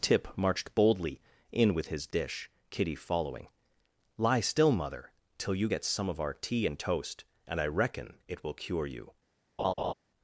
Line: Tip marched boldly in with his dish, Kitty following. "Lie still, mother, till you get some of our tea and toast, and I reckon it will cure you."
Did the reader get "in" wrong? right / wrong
right